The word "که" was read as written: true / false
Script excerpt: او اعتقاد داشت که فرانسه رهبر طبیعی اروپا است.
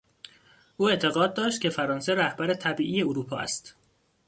true